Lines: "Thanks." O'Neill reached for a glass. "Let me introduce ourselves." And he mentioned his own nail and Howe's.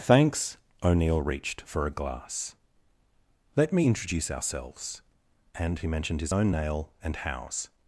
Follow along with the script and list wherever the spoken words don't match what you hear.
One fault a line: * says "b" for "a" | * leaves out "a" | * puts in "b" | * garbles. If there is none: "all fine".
all fine